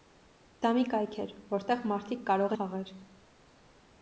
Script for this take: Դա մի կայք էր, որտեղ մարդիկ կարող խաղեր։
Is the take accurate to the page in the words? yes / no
yes